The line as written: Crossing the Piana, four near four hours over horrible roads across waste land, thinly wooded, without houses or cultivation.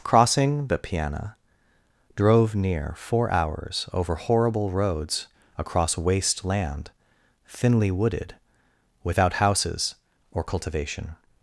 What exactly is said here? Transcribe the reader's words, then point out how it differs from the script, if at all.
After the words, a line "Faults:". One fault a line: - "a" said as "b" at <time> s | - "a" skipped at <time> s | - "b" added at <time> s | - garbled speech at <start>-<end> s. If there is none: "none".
Crossing the Piana, drove near four hours over horrible roads across waste land, thinly wooded, without houses or cultivation.
Faults:
- "four" said as "drove" at 2.1 s